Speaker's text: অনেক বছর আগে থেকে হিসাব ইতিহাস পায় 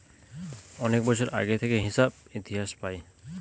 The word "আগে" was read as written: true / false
true